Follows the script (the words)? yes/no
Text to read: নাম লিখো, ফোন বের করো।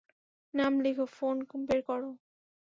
yes